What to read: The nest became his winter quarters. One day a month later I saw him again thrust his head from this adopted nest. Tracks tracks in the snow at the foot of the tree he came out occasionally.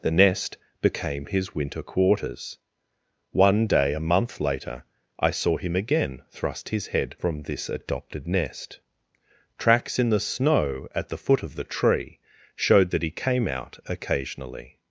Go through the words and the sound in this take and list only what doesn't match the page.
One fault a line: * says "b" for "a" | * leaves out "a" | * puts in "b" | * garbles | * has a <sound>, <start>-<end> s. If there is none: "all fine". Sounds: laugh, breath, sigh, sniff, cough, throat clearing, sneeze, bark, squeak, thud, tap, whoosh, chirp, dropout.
* leaves out "tracks"
* puts in "showed that"